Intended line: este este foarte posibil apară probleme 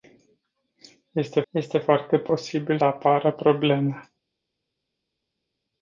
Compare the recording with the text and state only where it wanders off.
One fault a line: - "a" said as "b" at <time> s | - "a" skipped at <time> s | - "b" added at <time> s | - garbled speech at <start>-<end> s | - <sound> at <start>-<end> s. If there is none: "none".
none